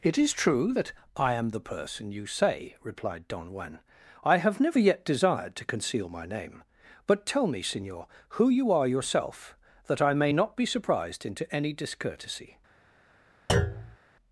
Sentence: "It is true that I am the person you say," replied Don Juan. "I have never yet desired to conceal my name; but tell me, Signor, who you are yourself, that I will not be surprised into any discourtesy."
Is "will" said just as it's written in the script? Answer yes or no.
no